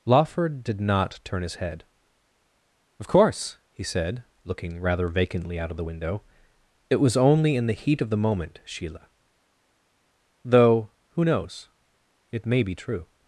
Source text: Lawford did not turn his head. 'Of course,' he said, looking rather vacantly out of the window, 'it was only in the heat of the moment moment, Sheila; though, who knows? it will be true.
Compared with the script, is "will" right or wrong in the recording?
wrong